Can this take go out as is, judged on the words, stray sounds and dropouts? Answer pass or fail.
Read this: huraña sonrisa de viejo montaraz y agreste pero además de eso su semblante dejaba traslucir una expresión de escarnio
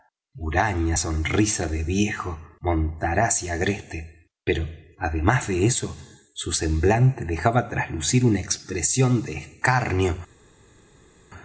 pass